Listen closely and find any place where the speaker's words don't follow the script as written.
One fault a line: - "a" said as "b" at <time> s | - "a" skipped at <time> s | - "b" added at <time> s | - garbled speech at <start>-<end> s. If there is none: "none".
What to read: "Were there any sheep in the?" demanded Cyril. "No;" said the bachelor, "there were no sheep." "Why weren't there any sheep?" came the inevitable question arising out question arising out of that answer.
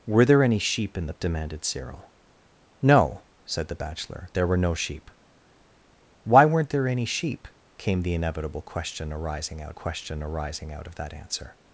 none